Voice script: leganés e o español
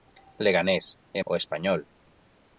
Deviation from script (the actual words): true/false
false